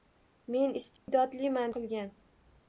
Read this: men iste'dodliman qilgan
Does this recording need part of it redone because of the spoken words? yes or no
no